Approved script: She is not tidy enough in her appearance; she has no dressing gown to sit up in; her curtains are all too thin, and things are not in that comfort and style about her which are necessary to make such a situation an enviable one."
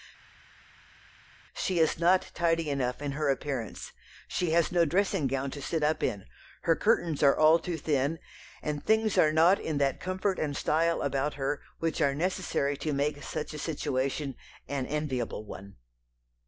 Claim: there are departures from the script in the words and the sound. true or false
false